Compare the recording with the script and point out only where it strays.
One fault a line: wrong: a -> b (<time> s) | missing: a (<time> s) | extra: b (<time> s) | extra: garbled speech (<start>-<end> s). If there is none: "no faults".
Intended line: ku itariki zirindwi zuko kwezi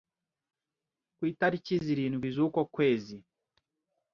no faults